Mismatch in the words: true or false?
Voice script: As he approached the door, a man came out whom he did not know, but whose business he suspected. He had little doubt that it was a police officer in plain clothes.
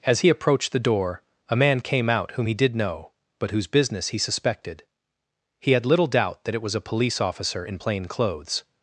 true